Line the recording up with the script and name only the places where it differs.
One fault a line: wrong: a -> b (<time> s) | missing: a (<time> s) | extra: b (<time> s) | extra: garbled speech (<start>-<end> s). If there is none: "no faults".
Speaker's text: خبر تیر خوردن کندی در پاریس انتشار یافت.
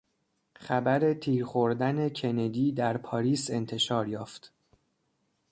no faults